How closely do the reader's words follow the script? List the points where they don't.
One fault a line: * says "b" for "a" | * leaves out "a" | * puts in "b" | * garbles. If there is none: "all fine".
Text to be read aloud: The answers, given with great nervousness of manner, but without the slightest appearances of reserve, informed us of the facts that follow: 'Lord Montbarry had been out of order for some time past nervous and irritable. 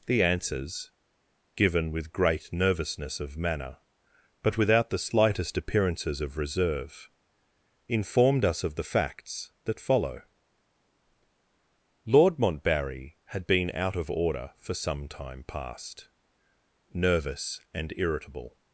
all fine